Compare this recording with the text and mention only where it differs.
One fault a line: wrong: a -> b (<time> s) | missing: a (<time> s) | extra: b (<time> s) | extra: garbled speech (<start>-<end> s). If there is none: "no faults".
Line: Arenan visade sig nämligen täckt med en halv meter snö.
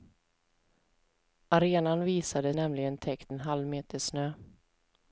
missing: sig (2.5 s)
missing: med (3.3 s)